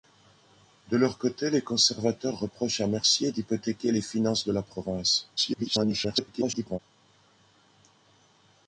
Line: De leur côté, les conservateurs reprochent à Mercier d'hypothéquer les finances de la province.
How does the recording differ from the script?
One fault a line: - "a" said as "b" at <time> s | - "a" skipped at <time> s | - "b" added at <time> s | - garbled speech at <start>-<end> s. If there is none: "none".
- garbled speech at 5.4-6.8 s